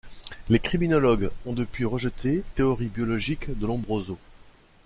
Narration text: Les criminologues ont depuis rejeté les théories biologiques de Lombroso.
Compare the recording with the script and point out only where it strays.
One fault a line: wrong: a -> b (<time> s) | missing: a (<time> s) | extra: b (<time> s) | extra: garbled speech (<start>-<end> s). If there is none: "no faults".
missing: les (2.4 s)